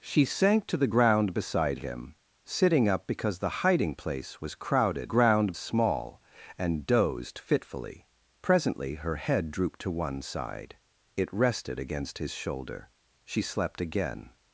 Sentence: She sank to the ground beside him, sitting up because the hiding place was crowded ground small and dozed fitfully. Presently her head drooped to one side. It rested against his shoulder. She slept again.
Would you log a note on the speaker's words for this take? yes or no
no